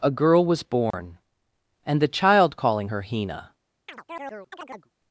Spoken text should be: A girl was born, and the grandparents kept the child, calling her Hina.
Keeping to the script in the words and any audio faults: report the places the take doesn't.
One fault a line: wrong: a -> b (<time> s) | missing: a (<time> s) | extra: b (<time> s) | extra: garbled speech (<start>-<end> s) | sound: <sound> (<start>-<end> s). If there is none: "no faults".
sound: dropout (0.9-0.9 s)
missing: grandparents kept the (2.1 s)
sound: chirp (3.9-4.9 s)